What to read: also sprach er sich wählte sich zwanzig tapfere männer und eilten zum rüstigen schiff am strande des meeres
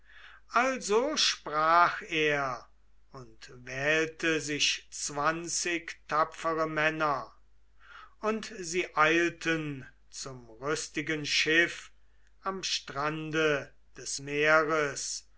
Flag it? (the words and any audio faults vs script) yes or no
yes